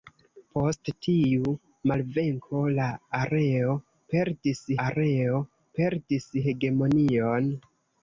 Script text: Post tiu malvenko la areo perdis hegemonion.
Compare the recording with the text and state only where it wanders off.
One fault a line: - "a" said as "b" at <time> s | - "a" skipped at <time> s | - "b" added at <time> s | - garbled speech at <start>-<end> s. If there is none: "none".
- "areo perdis" added at 4.9 s